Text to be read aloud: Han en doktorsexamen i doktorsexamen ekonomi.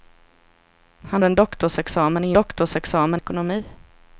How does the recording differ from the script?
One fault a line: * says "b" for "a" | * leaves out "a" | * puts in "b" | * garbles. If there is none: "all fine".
all fine